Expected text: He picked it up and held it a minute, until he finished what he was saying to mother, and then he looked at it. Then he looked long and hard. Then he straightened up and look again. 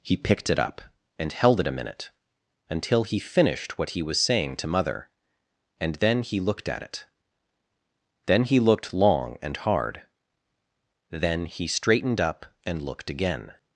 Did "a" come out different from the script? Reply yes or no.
no